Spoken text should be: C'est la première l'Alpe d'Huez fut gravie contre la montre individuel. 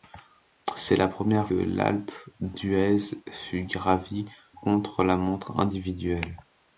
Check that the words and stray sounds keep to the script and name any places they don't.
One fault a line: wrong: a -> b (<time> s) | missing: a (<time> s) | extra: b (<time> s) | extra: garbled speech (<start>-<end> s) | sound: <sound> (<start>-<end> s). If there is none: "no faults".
no faults